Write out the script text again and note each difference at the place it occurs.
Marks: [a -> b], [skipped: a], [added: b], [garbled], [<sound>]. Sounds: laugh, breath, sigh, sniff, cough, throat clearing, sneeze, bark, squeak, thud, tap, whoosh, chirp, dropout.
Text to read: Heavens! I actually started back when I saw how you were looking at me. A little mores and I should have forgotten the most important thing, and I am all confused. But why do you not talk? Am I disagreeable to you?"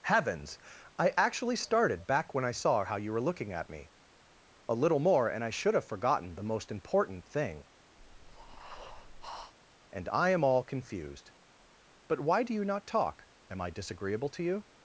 Heavens! I actually started back when I saw how you were looking at me. A little [mores -> more] and I should have forgotten the most important thing, [breath] and I am all confused. But why do you not talk? Am I disagreeable to you?"